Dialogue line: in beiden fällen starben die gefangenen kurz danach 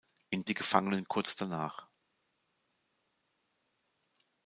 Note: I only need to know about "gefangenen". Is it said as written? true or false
true